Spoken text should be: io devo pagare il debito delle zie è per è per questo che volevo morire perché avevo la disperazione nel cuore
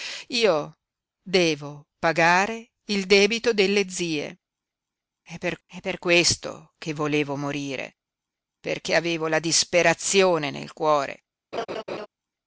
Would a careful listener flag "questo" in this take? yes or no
no